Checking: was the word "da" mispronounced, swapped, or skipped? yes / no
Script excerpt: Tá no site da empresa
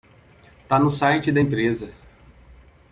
no